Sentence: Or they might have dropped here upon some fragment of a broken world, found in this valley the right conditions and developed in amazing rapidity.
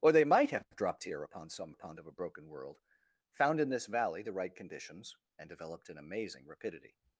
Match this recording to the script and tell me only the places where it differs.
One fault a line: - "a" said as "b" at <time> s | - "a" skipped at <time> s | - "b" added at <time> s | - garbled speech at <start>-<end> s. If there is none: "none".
- "fragment" said as "upon" at 1.7 s